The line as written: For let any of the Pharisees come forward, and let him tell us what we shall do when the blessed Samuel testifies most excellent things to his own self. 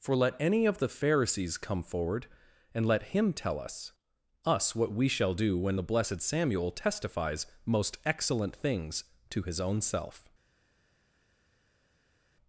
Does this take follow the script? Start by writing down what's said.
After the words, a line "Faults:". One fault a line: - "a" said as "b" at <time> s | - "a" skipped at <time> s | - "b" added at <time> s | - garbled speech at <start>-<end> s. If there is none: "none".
For let any of the Pharisees come forward, and let him tell us us what we shall do when the blessed Samuel testifies most excellent things to his own self.
Faults:
- "us" added at 4.4 s